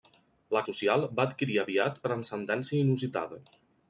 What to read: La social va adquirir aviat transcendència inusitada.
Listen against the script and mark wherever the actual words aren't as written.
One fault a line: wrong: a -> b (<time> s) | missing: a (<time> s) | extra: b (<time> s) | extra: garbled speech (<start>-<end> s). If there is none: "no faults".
no faults